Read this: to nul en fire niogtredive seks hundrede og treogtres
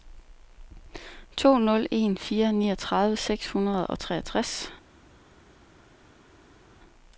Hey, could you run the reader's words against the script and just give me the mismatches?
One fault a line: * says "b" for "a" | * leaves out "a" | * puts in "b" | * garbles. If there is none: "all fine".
all fine